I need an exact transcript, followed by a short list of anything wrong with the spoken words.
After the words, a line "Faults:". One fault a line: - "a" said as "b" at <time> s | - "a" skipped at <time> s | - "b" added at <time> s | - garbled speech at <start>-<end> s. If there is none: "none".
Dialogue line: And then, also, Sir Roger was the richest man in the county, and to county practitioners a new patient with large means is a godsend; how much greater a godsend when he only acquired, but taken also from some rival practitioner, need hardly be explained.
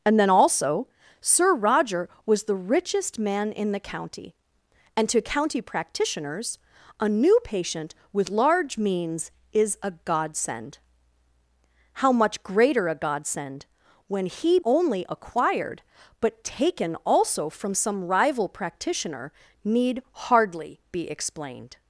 And then, also, Sir Roger was the richest man in the county, and to county practitioners a new patient with large means is a godsend; how much greater a godsend when he only acquired, but taken also from some rival practitioner, need hardly be explained.
Faults:
none